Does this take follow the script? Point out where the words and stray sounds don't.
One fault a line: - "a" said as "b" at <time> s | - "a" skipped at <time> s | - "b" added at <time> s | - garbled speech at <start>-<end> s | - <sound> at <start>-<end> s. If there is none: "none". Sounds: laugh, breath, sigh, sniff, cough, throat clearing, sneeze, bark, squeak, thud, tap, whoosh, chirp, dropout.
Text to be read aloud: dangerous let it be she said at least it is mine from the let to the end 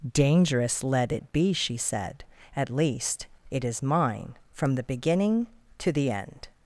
- "let" said as "beginning" at 4.8 s